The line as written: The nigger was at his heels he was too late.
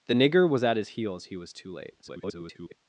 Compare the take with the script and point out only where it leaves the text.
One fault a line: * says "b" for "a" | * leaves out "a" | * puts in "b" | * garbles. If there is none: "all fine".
* garbles